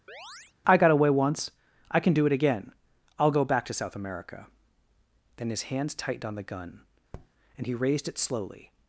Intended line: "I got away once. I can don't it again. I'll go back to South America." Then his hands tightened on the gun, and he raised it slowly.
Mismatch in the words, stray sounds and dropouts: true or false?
true